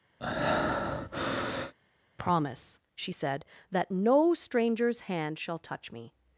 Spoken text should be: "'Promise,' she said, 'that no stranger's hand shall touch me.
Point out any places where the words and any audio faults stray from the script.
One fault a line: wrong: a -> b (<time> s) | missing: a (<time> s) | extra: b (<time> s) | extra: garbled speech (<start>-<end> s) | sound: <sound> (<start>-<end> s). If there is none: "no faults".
sound: breath (0.2-1.7 s)